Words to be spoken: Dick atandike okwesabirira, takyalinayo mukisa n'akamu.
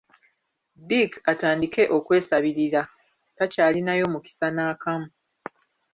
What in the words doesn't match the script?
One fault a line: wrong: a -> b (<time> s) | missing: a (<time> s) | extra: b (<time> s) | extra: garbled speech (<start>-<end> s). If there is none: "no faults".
no faults